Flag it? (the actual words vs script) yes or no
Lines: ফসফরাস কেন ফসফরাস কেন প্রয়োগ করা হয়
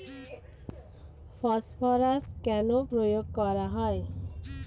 yes